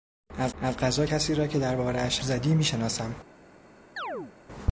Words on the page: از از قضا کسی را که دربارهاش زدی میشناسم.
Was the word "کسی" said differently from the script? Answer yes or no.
no